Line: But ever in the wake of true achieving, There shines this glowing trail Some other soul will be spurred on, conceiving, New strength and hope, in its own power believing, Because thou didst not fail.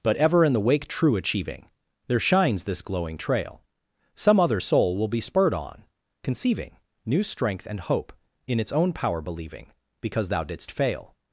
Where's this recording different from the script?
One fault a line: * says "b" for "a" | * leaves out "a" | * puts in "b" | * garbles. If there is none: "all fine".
* leaves out "of"
* leaves out "not"